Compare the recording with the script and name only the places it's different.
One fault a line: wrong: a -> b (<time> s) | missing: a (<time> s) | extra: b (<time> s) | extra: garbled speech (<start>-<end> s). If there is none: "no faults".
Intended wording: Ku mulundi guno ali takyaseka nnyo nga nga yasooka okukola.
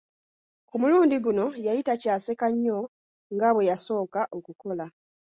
wrong: ali -> yali (1.6 s)
wrong: nga -> bwe (3.5 s)